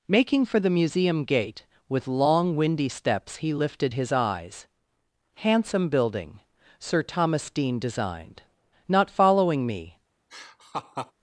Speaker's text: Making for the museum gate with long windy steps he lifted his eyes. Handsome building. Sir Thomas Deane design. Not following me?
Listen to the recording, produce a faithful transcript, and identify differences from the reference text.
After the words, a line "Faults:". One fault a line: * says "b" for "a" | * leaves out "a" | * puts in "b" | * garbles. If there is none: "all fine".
Making for the museum gate with long windy steps he lifted his eyes. Handsome building. Sir Thomas Deane designed. Not following me?
Faults:
* says "designed" for "design"